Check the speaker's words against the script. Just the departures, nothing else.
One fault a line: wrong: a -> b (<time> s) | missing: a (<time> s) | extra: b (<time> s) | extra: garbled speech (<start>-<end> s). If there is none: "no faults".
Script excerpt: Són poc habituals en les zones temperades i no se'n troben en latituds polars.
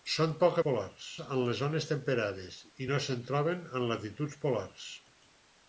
wrong: habituals -> polars (0.7 s)